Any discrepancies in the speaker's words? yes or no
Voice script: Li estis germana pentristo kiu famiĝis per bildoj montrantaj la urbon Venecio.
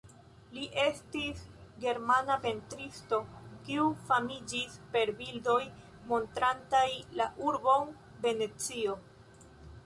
no